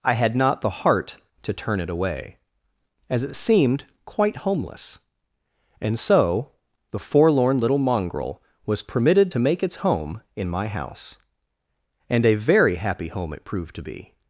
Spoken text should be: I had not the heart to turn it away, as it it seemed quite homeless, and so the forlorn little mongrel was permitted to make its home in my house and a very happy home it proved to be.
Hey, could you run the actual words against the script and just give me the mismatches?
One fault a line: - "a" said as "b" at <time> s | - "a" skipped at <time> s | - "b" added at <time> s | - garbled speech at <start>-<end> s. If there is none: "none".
none